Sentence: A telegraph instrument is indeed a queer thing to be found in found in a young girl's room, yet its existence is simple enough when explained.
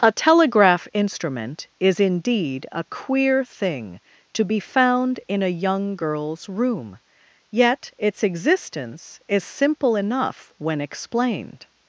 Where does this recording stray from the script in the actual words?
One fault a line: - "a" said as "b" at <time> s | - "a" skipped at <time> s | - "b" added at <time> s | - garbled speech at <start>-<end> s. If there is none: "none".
- "found in" skipped at 5.4 s